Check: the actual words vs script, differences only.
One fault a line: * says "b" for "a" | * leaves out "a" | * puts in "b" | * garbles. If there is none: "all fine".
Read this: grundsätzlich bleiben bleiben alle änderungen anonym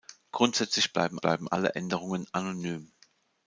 all fine